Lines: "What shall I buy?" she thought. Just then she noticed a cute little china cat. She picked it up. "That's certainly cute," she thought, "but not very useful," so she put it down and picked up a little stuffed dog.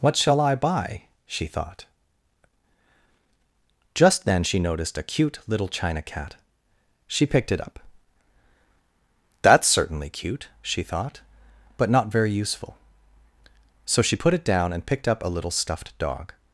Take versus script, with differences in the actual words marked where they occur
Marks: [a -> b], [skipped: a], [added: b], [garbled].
"What shall I buy?" she thought. Just then she noticed a cute little china cat. She picked it up. "That's certainly cute," she thought, "but not very useful," so she put it down and picked up a little stuffed dog.